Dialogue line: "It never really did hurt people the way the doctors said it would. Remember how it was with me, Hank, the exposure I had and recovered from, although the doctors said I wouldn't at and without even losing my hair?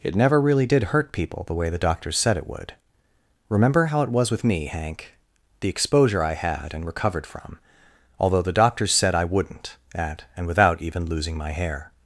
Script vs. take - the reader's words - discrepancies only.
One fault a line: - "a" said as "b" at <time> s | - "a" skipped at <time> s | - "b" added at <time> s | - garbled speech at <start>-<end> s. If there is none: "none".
none